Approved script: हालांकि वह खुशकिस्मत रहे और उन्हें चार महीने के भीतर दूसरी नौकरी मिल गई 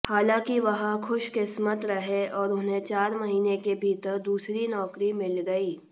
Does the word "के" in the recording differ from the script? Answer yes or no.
no